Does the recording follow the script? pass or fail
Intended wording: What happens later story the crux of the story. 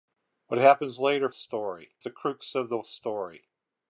pass